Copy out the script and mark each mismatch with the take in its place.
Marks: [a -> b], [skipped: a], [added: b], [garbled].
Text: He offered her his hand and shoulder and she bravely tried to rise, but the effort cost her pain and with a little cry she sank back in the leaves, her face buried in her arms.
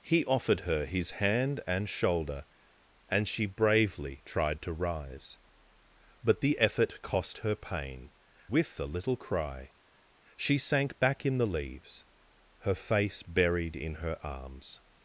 He offered her his hand and shoulder and she bravely tried to rise, but the effort cost her pain [skipped: and] with a little cry she sank back in the leaves, her face buried in her arms.